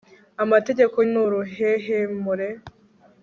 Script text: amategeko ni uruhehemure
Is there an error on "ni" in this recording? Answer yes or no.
no